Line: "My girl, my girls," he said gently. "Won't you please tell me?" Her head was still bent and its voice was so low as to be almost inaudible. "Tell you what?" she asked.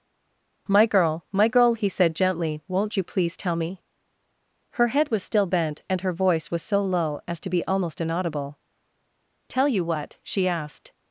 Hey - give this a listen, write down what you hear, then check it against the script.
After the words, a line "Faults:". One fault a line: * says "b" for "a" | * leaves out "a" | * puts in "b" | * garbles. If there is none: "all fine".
"My girl, my girl," he said gently. "Won't you please tell me?" Her head was still bent and her voice was so low as to be almost inaudible. "Tell you what?" she asked.
Faults:
* says "girl" for "girls"
* says "her" for "its"